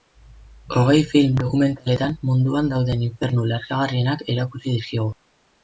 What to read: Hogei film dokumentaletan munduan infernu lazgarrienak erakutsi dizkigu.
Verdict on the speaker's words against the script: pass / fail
fail